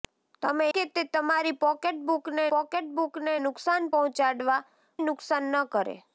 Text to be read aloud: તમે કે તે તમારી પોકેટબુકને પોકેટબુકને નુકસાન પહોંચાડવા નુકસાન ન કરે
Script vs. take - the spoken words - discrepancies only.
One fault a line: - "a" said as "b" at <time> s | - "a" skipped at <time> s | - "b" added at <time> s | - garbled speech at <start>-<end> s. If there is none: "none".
none